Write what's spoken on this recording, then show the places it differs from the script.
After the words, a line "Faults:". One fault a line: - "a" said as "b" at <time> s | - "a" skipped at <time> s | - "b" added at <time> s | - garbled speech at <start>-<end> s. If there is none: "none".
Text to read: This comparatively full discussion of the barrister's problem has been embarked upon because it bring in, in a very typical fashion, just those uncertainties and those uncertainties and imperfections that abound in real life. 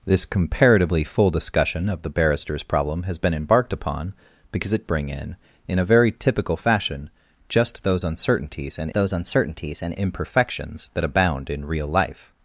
This comparatively full discussion of the barrister's problem has been embarked upon because it bring in, in a very typical fashion, just those uncertainties and those uncertainties and imperfections that abound in real life.
Faults:
none